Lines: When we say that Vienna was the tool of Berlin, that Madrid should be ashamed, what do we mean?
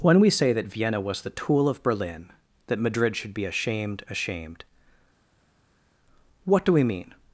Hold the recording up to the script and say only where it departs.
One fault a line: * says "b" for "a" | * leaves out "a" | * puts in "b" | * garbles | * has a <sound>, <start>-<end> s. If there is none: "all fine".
* puts in "ashamed"